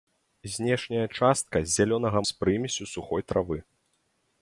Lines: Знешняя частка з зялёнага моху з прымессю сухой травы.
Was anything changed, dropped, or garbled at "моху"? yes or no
yes